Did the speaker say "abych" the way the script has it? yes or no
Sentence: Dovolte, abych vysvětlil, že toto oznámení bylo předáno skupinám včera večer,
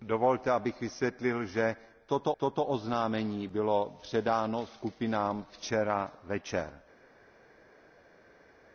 yes